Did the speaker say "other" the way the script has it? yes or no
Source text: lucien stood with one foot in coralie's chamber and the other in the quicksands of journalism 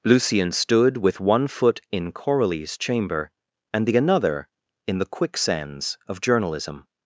no